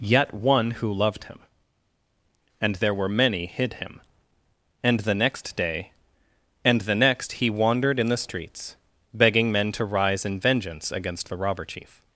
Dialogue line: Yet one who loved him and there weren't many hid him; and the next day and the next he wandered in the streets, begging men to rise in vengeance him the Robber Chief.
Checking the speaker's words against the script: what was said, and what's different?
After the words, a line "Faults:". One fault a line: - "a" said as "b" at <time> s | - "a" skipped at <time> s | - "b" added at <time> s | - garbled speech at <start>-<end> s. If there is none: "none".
Yet one who loved him and there were many hid him; and the next day and the next he wandered in the streets, begging men to rise in vengeance against the Robber Chief.
Faults:
- "weren't" said as "were" at 2.9 s
- "him" said as "against" at 10.9 s